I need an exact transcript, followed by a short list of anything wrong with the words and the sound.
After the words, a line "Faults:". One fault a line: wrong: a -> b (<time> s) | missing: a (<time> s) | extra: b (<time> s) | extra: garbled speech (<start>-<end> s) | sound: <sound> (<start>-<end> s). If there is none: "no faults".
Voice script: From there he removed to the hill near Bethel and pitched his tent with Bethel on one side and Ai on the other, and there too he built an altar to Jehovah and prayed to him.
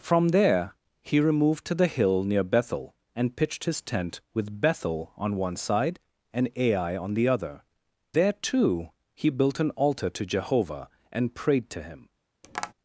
From there he removed to the hill near Bethel and pitched his tent with Bethel on one side and Ai on the other, there too he built an altar to Jehovah and prayed to him.
Faults:
missing: and (7.6 s)
sound: tap (12.4-12.7 s)